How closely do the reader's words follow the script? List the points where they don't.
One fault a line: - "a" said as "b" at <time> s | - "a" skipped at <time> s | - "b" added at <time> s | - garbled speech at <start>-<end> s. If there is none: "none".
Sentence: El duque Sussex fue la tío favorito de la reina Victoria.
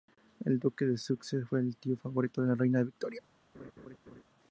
- "de" added at 0.8 s
- "la" said as "el" at 1.6 s